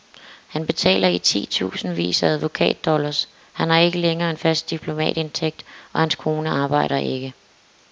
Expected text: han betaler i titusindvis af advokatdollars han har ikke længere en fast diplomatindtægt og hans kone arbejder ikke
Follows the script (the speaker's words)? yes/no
yes